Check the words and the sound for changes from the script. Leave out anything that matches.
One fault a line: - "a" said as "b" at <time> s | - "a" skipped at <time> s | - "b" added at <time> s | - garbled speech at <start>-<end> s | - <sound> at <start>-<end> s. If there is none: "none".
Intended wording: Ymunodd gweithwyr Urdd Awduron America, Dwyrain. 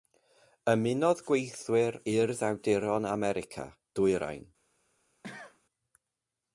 - cough at 5.2-5.6 s